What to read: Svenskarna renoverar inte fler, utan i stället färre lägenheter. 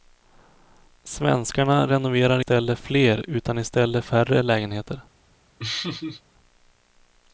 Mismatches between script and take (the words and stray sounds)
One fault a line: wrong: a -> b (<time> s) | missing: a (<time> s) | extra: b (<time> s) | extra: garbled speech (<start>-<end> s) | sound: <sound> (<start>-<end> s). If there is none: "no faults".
wrong: inte -> stället (2.4 s)
sound: laugh (5.6-6.2 s)